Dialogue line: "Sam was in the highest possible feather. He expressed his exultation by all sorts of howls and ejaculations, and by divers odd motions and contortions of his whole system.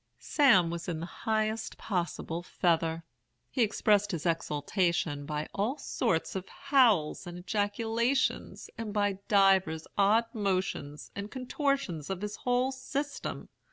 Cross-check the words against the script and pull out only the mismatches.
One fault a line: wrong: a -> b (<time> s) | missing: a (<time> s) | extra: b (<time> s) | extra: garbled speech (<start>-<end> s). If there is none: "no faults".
no faults